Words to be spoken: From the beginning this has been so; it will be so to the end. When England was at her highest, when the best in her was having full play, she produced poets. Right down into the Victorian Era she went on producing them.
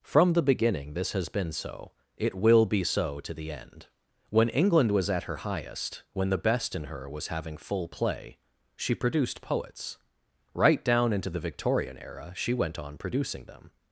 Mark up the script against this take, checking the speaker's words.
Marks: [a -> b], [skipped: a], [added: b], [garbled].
From the beginning this has been so; it will be so to the end. When England was at her highest, when the best in her was having full play, she produced poets. Right down into the Victorian Era she went on producing them.